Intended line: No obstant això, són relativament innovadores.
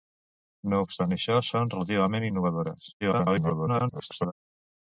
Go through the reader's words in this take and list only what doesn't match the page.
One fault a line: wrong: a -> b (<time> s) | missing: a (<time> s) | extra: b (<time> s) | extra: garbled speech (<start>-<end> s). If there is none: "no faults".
extra: garbled speech (3.0-4.3 s)